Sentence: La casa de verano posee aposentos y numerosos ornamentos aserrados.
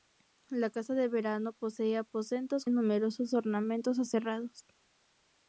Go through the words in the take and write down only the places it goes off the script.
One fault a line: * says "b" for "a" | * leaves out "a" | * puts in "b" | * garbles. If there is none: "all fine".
all fine